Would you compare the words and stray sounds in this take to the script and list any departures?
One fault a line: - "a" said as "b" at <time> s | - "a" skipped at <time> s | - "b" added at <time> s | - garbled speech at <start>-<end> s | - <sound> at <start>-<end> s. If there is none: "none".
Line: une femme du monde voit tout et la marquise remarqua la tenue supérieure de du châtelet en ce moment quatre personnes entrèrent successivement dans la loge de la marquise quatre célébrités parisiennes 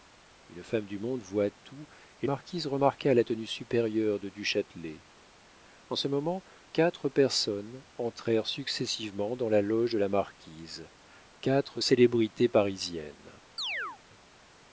- "la" skipped at 2.2 s
- chirp at 13.6-14.0 s